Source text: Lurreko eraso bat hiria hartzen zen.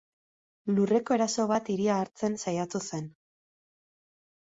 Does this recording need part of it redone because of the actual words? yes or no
yes